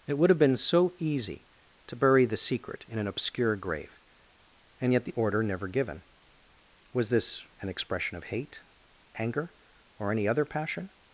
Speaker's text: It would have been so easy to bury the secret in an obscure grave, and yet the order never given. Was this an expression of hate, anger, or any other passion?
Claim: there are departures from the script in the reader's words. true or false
false